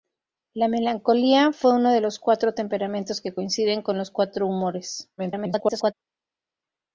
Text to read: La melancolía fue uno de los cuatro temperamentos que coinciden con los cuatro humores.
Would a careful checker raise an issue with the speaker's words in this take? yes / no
yes